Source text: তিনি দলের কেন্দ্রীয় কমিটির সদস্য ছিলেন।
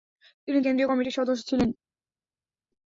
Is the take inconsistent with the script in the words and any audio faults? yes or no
yes